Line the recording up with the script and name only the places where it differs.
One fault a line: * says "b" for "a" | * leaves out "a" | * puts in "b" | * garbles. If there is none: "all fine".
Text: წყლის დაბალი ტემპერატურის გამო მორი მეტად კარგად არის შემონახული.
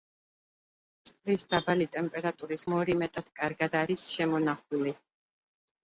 * leaves out "გამო"